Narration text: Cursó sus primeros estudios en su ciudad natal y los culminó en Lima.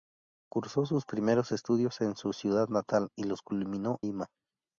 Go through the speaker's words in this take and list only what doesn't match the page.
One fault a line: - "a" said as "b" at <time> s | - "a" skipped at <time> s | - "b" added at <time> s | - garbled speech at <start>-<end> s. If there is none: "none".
- "en" skipped at 4.0 s